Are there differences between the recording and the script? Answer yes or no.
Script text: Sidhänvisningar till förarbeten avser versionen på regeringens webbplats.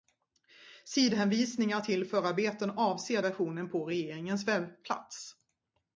no